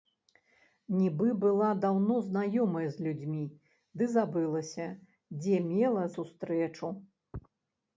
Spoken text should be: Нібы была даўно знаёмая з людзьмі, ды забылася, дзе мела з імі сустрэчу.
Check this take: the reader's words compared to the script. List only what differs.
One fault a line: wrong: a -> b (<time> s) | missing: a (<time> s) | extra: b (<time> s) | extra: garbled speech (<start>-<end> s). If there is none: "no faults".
missing: з імі (6.0 s)